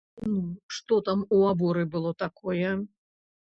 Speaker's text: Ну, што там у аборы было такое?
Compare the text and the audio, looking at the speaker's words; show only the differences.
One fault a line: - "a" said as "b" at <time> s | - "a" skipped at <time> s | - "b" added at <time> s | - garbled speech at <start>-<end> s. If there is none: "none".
none